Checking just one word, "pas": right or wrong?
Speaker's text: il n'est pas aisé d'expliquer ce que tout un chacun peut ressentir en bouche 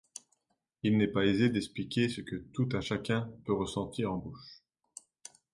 right